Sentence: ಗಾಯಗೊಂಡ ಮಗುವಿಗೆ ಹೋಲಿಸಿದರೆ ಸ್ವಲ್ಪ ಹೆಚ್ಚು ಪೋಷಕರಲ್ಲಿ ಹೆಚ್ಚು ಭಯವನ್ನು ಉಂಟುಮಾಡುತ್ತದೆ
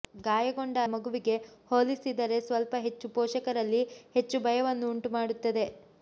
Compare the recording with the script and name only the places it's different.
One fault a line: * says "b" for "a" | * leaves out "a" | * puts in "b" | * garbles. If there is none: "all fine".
all fine